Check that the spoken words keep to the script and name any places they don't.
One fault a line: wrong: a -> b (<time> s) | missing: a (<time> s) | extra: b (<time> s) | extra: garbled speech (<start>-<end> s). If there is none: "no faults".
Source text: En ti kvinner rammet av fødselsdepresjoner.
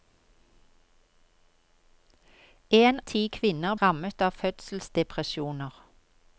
no faults